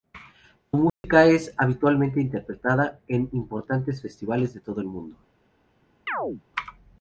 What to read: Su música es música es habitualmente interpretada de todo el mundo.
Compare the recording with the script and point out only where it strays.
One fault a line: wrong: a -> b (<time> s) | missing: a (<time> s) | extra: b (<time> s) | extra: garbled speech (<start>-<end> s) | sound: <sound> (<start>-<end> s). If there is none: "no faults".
sound: dropout (0.9-1.0 s)
wrong: música es habitualmente interpretada -> habitualmente interpretada en importantes festivales (1.6 s)
sound: chirp (6.1-6.4 s)